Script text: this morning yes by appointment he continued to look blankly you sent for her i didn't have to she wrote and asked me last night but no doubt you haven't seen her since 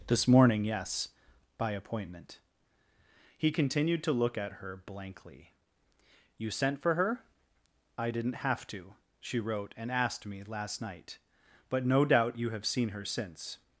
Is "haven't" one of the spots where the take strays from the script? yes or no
yes